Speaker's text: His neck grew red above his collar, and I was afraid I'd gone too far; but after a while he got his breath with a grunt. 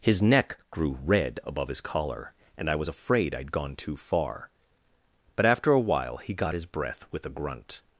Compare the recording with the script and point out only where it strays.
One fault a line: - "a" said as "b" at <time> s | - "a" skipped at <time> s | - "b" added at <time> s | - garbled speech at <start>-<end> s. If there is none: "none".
none